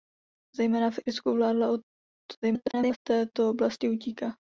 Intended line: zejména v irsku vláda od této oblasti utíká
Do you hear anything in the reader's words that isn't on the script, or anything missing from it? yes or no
yes